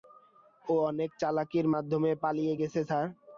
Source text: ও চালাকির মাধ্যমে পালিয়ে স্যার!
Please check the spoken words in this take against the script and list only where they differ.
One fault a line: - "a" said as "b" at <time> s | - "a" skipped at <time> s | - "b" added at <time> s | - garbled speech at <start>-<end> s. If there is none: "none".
- "অনেক" added at 0.9 s
- "গেছে" added at 2.6 s